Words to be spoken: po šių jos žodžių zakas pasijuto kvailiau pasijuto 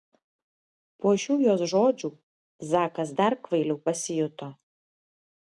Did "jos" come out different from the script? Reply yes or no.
no